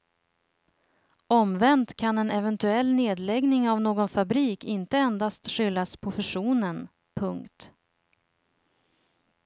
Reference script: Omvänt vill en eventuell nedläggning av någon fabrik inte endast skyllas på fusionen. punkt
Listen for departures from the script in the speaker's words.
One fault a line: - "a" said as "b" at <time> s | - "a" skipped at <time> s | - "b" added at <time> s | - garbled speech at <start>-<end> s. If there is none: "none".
- "vill" said as "kan" at 1.9 s